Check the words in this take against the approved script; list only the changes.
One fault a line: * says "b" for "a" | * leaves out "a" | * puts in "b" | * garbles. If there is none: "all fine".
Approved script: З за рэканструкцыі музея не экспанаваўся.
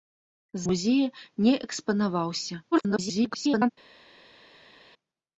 * leaves out "за рэканструкцыі"
* garbles